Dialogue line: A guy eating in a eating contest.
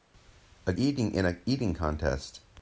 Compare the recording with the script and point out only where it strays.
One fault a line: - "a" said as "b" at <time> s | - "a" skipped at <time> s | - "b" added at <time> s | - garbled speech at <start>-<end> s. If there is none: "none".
- "guy" skipped at 0.7 s